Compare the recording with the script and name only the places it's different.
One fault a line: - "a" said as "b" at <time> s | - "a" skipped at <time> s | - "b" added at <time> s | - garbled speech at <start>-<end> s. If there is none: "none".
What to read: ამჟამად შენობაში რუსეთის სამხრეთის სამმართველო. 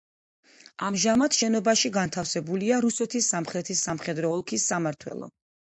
- "განთავსებულია" added at 2.0 s
- "სამხედრო ოლქის" added at 3.9 s